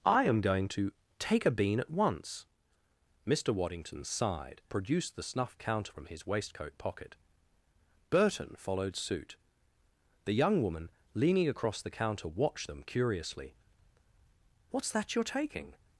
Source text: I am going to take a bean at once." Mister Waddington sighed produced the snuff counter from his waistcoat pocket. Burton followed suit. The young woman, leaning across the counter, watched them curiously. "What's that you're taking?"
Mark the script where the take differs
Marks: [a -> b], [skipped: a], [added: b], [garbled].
I am going to take a bean at once." Mister Waddington sighed produced the snuff counter from his waistcoat pocket. Burton followed suit. The young woman, leaning across the counter, watched them curiously. "What's that you're taking?"